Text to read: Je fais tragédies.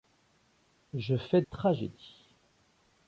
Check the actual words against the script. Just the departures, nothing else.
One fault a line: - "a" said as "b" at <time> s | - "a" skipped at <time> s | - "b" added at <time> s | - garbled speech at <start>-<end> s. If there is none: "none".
none